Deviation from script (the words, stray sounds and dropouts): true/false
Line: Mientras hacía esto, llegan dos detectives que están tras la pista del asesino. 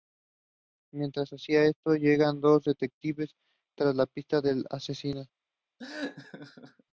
true